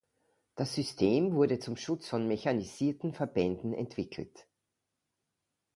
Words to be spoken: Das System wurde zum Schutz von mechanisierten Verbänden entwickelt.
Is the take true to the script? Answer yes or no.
yes